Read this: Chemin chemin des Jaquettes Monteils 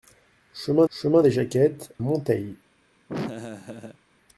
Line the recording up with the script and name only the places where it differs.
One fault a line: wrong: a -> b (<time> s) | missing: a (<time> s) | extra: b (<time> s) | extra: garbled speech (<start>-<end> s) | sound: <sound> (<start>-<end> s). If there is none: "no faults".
sound: laugh (3.1-4.0 s)